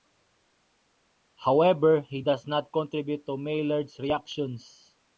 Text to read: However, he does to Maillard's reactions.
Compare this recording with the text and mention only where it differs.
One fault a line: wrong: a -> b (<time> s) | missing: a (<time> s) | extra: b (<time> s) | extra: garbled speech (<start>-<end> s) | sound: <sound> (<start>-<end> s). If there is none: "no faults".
extra: not contribute (2.5 s)